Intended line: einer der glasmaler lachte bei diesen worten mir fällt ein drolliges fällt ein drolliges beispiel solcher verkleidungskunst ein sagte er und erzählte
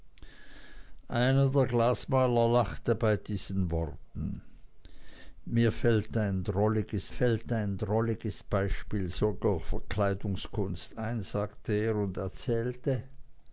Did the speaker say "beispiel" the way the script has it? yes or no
yes